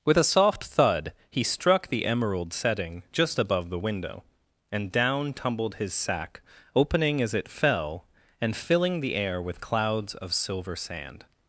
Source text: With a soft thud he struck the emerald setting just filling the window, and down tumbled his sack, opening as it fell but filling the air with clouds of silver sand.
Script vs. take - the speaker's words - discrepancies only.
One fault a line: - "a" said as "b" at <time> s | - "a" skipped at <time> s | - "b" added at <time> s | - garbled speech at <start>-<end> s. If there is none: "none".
- "filling" said as "above" at 3.4 s
- "but" said as "and" at 8.4 s